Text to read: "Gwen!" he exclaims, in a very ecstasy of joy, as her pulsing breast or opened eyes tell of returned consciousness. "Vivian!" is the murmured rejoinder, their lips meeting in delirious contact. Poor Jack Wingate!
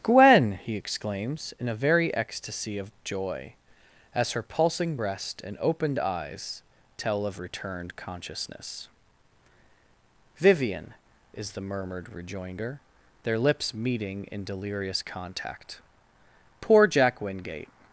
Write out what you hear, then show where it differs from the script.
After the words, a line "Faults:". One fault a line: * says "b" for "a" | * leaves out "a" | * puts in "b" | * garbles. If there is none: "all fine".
"Gwen!" he exclaims, in a very ecstasy of joy, as her pulsing breast and opened eyes tell of returned consciousness. "Vivian!" is the murmured rejoinder, their lips meeting in delirious contact. Poor Jack Wingate!
Faults:
* says "and" for "or"